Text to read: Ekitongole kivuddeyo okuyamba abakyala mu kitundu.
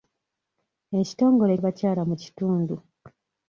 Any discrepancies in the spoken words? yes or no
yes